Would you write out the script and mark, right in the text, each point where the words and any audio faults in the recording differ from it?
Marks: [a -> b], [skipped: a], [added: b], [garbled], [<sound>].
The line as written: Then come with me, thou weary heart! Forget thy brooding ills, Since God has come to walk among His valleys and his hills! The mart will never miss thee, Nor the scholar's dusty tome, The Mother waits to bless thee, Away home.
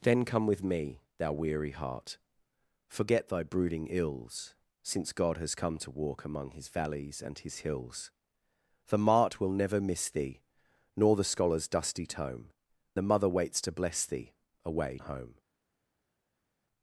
Then come with me, thou weary heart! Forget thy brooding ills, Since God has come to walk among His valleys and his hills! The mart will never miss thee, Nor the scholar's dusty tome, The Mother waits to bless thee, Away home.